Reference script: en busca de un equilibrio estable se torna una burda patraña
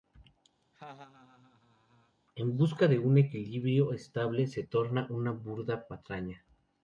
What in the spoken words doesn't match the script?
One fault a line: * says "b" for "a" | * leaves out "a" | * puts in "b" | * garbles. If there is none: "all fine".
all fine